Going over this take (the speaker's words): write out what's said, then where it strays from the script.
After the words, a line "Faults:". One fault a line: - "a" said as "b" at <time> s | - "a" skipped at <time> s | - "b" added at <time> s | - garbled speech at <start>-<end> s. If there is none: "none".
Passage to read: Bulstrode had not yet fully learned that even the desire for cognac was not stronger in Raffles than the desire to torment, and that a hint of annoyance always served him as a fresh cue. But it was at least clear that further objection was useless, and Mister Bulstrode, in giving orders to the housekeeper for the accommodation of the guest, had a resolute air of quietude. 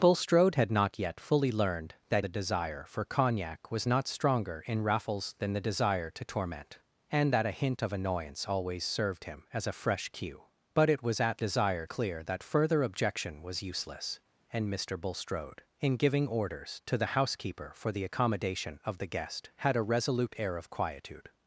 Bulstrode had not yet fully learned that the desire for cognac was not stronger in Raffles than the desire to torment, and that a hint of annoyance always served him as a fresh cue. But it was at desire clear that further objection was useless, and Mister Bulstrode, in giving orders to the housekeeper for the accommodation of the guest, had a resolute air of quietude.
Faults:
- "even" skipped at 2.2 s
- "least" said as "desire" at 11.4 s